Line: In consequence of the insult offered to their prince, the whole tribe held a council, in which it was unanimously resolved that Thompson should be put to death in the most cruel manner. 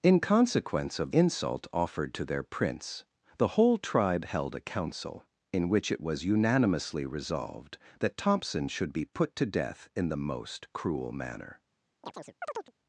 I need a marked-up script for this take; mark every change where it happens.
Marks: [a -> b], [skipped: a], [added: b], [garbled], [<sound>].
In consequence of [skipped: the] insult offered to their prince, the whole tribe held a council, in which it was unanimously resolved that Thompson should be put to death in the most cruel manner. [chirp]